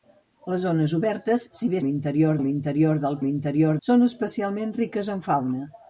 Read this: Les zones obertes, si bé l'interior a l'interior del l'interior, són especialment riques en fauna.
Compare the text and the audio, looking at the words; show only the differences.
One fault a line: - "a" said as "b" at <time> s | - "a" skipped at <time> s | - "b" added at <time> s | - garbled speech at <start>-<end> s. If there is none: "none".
none